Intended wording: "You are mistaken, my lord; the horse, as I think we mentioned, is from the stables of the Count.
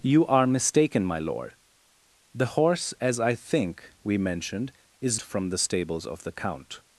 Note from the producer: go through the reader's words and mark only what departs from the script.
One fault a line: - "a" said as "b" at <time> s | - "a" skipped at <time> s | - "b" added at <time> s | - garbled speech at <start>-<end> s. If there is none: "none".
none